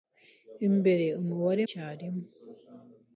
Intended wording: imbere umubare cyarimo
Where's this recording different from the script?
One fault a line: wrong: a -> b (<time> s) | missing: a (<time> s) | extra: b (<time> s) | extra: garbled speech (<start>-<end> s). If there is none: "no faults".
no faults